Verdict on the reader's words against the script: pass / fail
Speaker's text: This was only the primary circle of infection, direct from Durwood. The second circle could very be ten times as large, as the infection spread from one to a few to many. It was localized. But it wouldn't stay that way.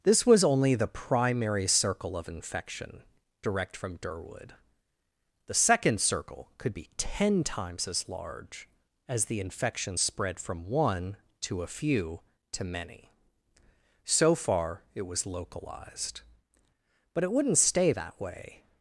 fail